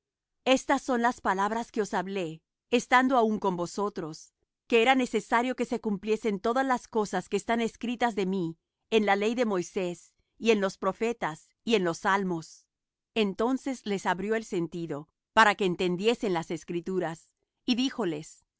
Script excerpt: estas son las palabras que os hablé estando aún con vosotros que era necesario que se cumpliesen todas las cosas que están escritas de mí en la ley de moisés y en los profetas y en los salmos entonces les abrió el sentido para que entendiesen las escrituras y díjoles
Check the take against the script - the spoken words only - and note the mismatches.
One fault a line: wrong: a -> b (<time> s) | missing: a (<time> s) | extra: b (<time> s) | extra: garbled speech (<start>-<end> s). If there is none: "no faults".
no faults